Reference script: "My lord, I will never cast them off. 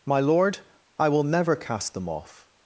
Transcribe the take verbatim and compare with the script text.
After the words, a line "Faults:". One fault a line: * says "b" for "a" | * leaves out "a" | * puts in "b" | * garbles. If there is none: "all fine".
"My lord, I will never cast them off.
Faults:
all fine